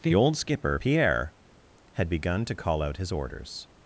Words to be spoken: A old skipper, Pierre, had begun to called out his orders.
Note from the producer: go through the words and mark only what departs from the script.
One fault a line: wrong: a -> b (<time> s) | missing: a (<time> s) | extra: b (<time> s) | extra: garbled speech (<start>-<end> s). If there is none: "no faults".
wrong: A -> The (0.0 s)
wrong: called -> call (2.5 s)